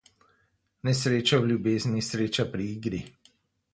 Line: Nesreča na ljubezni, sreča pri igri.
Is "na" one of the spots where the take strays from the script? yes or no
yes